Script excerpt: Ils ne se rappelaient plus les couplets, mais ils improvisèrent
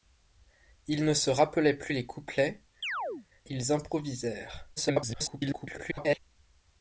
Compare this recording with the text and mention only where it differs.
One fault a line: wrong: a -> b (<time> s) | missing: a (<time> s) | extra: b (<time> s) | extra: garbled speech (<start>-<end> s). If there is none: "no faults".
missing: mais (2.6 s)
extra: garbled speech (4.8-6.2 s)